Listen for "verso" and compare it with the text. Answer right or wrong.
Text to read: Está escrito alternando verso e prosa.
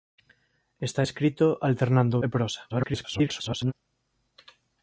wrong